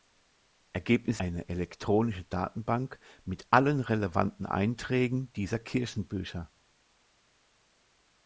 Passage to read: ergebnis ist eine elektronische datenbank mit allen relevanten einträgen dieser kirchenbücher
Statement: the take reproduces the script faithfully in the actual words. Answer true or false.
false